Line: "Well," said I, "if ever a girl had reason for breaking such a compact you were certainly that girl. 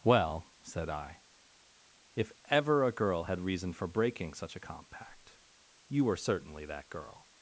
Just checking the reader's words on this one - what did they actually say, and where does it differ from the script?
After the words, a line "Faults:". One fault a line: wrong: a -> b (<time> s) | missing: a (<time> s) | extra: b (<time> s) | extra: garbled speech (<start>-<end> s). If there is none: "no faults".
"Well," said I, "if ever a girl had reason for breaking such a compact you were certainly that girl.
Faults:
no faults